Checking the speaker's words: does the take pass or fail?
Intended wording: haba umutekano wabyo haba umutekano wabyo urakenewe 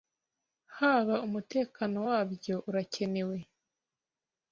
fail